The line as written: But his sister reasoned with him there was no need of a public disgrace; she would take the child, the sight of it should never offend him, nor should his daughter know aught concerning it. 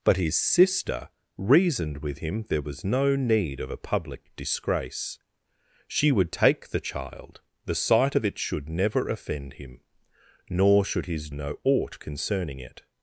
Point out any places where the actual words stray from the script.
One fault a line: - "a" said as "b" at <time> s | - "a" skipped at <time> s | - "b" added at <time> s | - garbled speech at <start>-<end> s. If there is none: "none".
- "daughter" skipped at 11.3 s